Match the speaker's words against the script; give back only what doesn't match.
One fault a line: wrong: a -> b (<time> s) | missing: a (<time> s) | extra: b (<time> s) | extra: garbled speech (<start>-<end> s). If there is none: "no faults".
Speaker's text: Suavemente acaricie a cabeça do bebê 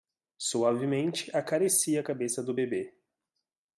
no faults